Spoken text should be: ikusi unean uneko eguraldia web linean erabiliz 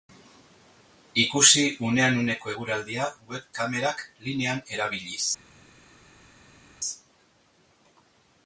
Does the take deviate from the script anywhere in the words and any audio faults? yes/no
yes